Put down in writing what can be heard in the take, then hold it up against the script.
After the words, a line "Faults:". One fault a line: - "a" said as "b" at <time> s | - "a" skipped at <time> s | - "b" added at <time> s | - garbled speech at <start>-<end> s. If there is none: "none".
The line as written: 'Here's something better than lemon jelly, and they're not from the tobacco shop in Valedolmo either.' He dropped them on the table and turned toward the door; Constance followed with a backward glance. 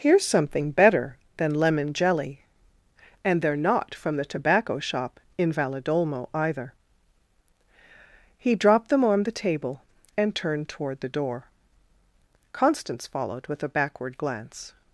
'Here's something better than lemon jelly, and they're not from the tobacco shop in Valedolmo either.' He dropped them on the table and turned toward the door; Constance followed with a backward glance.
Faults:
none